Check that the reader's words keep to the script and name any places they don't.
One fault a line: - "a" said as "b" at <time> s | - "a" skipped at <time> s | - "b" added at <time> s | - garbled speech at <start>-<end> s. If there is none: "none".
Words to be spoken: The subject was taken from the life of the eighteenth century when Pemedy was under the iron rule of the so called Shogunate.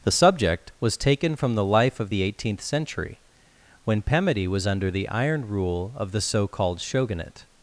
none